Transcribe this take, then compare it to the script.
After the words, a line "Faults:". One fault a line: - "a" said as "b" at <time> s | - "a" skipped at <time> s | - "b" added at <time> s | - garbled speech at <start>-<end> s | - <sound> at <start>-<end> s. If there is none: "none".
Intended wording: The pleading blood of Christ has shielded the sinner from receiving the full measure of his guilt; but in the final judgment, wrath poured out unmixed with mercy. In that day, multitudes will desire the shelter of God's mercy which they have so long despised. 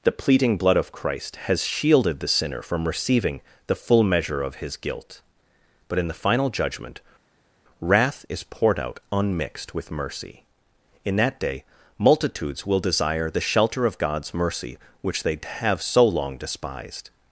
The pleading blood of Christ has shielded the sinner from receiving the full measure of his guilt; but in the final judgment, wrath is poured out unmixed with mercy. In that day, multitudes will desire the shelter of God's mercy which they have so long despised.
Faults:
- "is" added at 8.3 s